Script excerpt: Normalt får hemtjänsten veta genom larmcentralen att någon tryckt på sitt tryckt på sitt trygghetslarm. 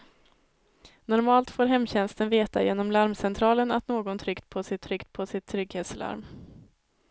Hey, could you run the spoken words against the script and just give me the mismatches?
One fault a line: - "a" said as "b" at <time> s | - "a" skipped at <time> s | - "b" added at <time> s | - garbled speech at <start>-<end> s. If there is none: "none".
none